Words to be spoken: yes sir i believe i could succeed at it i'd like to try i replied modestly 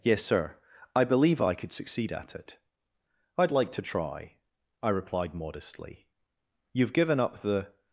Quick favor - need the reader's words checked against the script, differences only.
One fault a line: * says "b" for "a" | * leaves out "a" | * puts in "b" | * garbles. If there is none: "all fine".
* puts in "you've given up the"